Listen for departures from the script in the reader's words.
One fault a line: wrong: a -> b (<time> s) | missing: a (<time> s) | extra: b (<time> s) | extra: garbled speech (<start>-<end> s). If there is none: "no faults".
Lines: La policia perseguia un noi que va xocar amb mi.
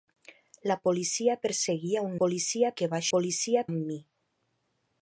wrong: noi -> policia (2.2 s)
wrong: xocar -> policia (3.1 s)